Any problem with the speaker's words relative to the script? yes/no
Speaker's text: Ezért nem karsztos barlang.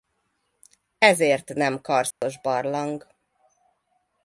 no